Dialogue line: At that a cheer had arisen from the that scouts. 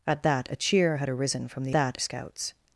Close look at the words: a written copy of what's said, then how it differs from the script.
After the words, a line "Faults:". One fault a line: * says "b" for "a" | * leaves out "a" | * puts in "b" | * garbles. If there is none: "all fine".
At that a cheer had arisen from the that scouts.
Faults:
all fine